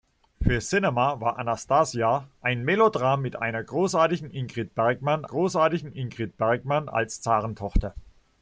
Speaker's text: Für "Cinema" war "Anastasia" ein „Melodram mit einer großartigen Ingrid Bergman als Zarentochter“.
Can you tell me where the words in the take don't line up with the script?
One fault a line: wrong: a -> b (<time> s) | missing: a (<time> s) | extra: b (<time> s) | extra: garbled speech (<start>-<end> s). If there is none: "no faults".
extra: großartigen Ingrid Bergman (5.2 s)